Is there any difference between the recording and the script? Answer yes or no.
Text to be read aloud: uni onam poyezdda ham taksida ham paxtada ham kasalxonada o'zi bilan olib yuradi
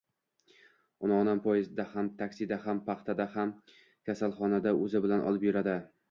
no